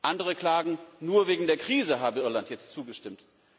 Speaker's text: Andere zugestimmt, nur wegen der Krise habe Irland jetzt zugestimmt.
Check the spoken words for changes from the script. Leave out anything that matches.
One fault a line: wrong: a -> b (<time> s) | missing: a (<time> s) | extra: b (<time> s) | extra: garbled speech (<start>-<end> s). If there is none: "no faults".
wrong: zugestimmt -> klagen (0.3 s)